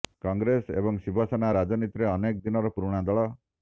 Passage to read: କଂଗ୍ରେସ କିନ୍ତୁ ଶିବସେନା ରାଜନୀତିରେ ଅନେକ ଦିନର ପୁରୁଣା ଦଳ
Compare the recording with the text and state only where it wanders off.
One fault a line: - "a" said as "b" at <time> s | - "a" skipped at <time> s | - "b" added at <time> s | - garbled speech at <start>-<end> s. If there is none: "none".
- "କିନ୍ତୁ" said as "ଏବଂ" at 0.8 s